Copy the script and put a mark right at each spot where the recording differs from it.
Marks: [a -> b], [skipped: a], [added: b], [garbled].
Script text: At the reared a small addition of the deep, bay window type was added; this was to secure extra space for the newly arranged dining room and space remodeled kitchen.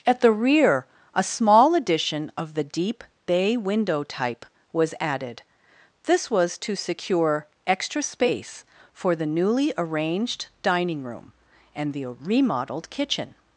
At the [reared -> rear] a small addition of the deep, bay window type was added; this was to secure extra space for the newly arranged dining room and [space -> the] remodeled kitchen.